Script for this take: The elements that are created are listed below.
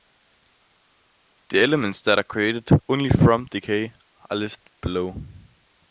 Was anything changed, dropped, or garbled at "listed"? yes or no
no